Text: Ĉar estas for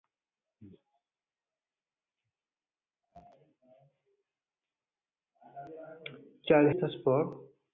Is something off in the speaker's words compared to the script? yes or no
no